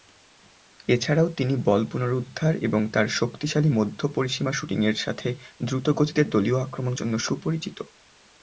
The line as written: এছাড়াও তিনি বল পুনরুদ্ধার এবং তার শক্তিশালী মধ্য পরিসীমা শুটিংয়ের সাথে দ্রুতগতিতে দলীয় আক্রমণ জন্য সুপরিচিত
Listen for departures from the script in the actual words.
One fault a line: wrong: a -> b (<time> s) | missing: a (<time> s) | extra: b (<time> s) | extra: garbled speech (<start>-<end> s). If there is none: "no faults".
no faults